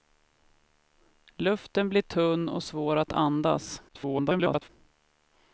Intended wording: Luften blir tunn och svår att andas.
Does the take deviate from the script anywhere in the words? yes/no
yes